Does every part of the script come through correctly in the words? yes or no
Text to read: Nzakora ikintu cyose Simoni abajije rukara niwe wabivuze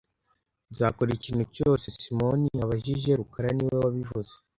yes